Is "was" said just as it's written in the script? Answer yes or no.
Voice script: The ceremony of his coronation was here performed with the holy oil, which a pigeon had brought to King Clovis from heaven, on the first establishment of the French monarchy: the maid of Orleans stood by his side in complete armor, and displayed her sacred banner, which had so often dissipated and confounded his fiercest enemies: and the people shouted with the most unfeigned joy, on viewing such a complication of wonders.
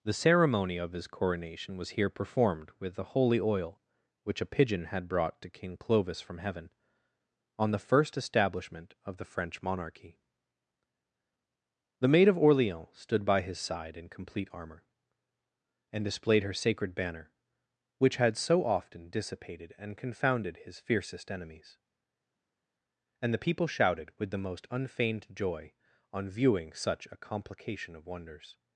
yes